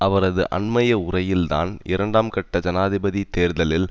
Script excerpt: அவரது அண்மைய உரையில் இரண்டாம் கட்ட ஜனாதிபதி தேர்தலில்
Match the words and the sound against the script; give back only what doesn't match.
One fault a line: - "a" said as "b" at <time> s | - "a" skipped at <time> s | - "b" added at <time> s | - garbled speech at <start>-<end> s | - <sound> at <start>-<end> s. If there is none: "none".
- "தான்" added at 1.5 s